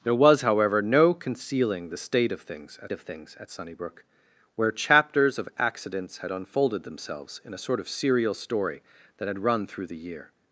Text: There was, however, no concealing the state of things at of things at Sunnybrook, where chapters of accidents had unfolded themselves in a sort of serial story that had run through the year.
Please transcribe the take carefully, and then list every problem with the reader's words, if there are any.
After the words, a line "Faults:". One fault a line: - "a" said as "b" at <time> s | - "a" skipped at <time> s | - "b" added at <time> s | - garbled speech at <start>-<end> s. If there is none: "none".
There was, however, no concealing the state of things at of things at Sunnybrook, where chapters of accidents had unfolded themselves in a sort of serial story that had run through the year.
Faults:
none